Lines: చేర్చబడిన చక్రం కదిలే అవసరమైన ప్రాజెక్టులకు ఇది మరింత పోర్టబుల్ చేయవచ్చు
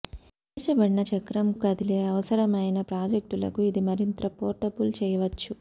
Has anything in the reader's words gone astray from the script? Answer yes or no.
no